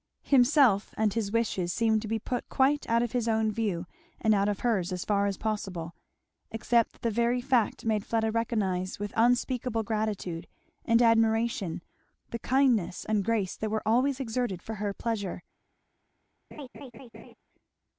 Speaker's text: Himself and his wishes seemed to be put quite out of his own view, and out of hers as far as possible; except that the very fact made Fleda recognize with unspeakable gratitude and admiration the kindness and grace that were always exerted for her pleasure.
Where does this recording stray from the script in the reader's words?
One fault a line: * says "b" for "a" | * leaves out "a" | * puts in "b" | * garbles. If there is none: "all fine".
all fine